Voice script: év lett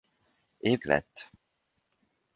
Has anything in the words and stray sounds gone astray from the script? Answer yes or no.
no